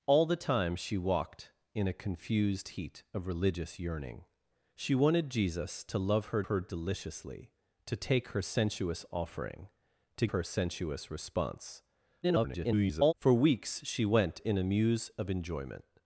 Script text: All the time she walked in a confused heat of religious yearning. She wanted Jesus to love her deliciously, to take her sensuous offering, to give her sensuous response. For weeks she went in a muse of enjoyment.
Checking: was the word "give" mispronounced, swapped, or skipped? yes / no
yes